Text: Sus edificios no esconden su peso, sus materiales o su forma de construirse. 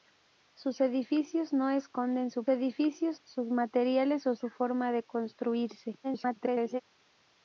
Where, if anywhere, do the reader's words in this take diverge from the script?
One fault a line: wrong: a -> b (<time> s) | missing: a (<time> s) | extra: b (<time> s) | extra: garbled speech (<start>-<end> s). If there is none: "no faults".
wrong: peso -> edificios (2.5 s)
extra: garbled speech (6.0-6.8 s)